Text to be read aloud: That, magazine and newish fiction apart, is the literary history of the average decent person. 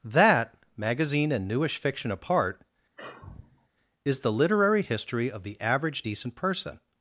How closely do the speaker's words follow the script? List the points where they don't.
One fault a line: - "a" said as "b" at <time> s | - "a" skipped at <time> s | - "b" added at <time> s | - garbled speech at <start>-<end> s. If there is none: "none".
none